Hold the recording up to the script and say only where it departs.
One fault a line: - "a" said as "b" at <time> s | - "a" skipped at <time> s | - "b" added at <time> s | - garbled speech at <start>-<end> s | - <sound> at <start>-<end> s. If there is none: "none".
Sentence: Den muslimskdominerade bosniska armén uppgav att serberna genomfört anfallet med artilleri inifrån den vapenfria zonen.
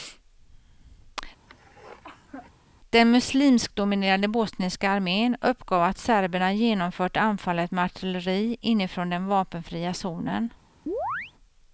- cough at 1.5-2.5 s
- chirp at 10.9-11.3 s